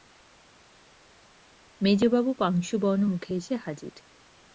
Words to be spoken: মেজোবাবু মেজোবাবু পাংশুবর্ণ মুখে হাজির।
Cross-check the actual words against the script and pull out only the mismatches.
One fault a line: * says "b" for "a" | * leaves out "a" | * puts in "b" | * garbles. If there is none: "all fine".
* leaves out "মেজোবাবু"
* puts in "এসে"